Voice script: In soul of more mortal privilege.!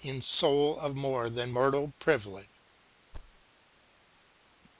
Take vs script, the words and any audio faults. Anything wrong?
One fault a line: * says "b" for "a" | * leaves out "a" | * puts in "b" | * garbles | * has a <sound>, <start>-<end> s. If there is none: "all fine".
* puts in "than"
* has a thud, 3.1-3.4 s